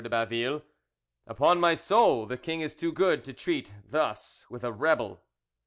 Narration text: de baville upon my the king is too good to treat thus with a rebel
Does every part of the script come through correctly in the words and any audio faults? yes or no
no